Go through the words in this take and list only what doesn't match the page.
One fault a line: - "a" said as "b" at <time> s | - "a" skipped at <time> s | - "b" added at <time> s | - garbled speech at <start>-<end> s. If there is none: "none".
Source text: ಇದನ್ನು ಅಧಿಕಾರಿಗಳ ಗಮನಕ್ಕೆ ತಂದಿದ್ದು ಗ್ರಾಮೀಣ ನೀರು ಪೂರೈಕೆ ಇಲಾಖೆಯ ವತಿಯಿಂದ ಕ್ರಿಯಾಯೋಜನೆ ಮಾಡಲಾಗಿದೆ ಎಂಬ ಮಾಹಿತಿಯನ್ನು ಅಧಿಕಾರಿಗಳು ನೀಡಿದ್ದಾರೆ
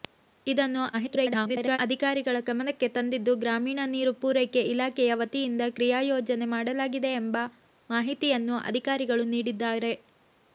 - garbled speech at 0.9-1.8 s